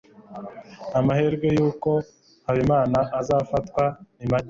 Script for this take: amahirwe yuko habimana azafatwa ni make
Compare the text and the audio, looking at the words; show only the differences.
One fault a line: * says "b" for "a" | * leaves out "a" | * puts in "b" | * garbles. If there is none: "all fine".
all fine